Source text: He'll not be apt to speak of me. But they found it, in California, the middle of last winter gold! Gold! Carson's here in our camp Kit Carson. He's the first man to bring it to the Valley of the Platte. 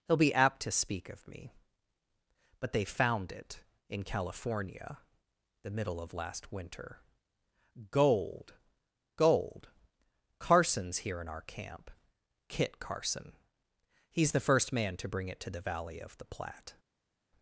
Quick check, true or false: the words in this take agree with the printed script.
false